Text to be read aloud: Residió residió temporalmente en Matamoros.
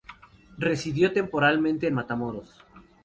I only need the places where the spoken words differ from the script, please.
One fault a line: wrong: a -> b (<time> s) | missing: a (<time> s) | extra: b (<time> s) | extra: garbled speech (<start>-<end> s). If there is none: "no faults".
missing: residió (1.1 s)